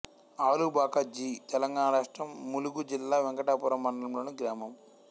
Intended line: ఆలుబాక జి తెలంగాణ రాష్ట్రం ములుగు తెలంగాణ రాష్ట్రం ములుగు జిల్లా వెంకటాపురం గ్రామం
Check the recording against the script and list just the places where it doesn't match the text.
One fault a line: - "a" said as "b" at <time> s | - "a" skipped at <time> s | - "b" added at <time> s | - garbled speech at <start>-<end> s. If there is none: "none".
- "తెలంగాణ రాష్ట్రం ములుగు" skipped at 2.8 s
- "మండలంలోని" added at 3.8 s